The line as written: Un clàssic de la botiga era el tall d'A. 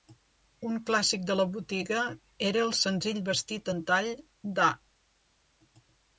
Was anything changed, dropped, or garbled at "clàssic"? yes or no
no